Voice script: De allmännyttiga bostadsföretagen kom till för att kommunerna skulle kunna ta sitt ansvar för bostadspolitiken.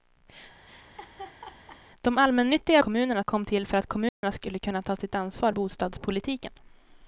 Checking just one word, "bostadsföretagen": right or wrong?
wrong